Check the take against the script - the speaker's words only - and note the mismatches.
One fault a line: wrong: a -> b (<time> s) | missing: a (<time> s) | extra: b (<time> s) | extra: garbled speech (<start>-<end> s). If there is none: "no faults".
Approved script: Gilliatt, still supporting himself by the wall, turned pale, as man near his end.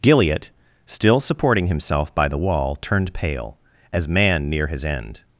no faults